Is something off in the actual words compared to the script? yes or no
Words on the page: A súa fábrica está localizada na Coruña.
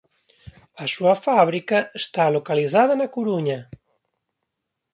no